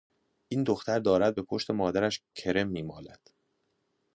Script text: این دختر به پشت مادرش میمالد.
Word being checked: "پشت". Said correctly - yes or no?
yes